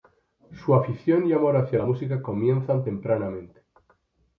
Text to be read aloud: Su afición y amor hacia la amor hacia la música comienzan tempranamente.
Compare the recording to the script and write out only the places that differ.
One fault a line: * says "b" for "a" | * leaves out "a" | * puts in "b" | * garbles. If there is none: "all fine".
* leaves out "amor hacia la"